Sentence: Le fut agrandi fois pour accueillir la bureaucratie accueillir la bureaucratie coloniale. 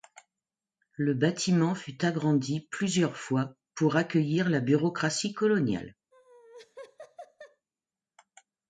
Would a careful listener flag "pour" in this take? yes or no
no